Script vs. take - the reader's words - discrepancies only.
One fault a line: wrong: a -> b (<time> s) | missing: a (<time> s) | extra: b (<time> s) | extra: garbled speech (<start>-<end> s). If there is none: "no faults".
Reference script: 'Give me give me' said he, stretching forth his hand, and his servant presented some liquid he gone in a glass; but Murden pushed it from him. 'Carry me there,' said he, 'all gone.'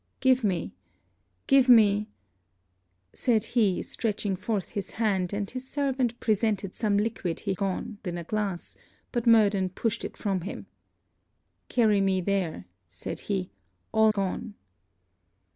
no faults